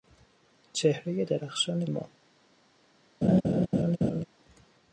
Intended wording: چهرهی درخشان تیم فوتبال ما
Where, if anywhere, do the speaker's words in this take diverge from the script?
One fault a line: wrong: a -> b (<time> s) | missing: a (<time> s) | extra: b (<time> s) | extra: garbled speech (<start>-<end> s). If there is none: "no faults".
missing: تیم فوتبال (1.8 s)